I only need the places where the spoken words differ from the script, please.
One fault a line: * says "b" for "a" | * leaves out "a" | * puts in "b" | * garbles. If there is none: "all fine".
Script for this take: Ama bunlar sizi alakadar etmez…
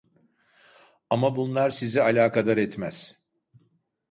all fine